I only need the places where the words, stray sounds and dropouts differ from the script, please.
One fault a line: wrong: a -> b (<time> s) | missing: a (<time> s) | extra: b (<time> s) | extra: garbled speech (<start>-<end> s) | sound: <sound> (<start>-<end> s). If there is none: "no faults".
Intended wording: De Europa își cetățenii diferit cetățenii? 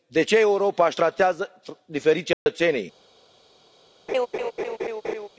extra: ce (0.2 s)
wrong: cetățenii -> tratează (0.9 s)
sound: dropout (2.3-2.5 s)
sound: laugh (4.1-5.3 s)